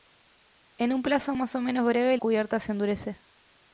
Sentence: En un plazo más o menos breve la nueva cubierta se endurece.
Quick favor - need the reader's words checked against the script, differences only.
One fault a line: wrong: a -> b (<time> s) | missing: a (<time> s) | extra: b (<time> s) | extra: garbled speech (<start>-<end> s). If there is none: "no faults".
missing: la nueva (2.2 s)